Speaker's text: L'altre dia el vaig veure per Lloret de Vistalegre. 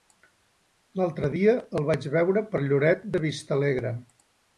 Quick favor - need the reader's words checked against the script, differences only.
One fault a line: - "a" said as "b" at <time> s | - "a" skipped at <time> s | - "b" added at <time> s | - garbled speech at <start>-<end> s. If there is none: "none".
none